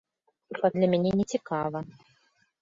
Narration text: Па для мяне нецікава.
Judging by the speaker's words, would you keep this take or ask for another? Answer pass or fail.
pass